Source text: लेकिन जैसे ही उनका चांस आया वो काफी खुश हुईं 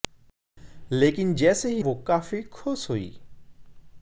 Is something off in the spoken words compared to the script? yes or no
yes